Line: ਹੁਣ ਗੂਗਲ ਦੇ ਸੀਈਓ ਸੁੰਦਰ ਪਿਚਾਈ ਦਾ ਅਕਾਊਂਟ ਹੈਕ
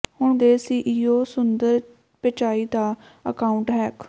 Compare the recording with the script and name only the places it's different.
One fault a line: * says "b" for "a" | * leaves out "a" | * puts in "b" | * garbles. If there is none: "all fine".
* leaves out "ਗੂਗਲ"